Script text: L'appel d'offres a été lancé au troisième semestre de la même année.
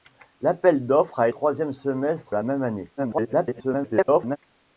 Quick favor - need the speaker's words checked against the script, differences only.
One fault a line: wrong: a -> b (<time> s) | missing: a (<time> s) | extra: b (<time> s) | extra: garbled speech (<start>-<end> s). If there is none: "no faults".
missing: été lancé au (1.3 s)
missing: de (2.4 s)
extra: garbled speech (3.0-4.4 s)